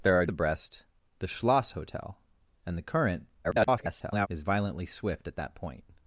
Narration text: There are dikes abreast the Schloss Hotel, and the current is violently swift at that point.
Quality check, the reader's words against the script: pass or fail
fail